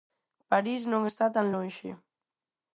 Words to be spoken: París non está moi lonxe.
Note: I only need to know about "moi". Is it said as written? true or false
false